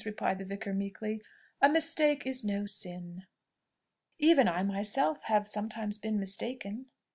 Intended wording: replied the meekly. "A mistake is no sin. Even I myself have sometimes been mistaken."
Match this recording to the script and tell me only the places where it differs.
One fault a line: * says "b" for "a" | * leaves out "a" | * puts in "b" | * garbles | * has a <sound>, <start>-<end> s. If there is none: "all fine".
* puts in "vicar"